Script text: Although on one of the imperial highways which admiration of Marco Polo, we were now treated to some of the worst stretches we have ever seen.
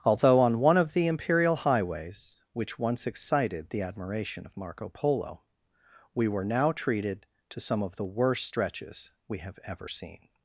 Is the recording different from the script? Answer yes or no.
yes